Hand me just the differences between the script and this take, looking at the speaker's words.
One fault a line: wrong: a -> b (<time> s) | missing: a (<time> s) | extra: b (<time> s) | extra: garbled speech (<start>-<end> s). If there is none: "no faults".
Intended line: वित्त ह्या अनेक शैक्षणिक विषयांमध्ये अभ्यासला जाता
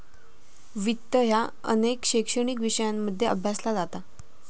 no faults